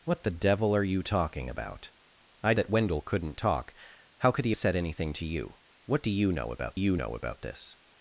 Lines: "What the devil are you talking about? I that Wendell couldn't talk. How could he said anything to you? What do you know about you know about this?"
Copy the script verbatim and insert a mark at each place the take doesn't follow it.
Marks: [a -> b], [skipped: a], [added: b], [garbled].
"What the devil are you talking about? I that Wendell couldn't talk. How could he said anything to you? What do you know about you know about this?"